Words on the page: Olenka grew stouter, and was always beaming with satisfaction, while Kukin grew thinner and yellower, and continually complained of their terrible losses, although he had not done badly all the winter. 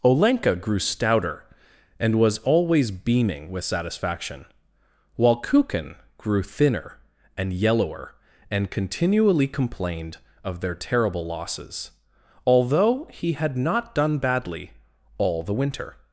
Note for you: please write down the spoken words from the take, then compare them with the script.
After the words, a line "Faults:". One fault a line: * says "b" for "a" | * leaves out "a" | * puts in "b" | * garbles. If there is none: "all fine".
Olenka grew stouter, and was always beaming with satisfaction, while Kukin grew thinner and yellower, and continually complained of their terrible losses, although he had not done badly all the winter.
Faults:
all fine